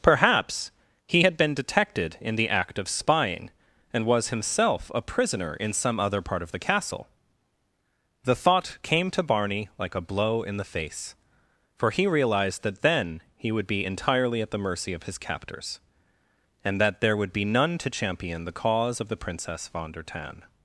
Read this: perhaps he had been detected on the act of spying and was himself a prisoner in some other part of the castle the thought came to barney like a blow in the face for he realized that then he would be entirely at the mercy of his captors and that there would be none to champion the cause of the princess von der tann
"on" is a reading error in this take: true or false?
true